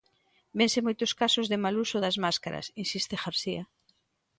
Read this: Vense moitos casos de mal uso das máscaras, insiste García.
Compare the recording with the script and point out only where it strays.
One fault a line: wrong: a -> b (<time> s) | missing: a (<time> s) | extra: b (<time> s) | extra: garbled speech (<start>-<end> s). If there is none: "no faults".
no faults